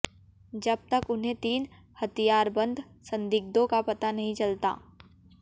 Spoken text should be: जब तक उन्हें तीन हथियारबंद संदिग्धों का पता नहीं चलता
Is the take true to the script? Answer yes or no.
yes